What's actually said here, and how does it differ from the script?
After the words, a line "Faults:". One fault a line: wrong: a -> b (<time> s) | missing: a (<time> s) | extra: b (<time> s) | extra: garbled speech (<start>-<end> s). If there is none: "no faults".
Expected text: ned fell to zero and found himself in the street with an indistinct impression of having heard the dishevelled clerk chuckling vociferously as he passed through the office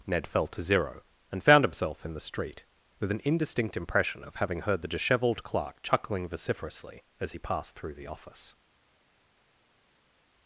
ned fell to zero and found himself in the street with an indistinct impression of having heard the dishevelled clerk chuckling vociferously as he passed through the office
Faults:
no faults